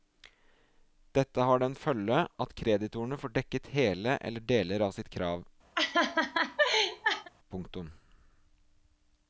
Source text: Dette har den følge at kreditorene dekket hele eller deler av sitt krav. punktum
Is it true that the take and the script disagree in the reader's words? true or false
true